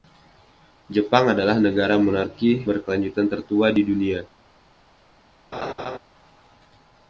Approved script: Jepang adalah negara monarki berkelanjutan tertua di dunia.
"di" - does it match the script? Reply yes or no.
yes